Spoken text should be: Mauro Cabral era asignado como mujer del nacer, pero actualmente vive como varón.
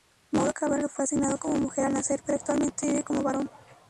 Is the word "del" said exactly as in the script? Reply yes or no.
no